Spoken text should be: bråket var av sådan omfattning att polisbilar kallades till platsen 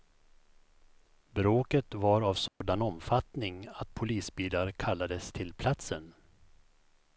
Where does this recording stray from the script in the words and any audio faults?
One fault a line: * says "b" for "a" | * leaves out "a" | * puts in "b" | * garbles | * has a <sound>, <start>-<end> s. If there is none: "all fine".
* has a dropout, 2.5-2.6 s